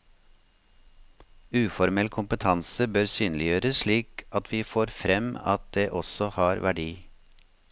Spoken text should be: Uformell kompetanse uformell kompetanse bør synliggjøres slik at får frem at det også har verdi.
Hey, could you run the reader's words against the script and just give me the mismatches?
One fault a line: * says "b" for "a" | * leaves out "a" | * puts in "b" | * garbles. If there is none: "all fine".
* leaves out "uformell kompetanse"
* puts in "vi"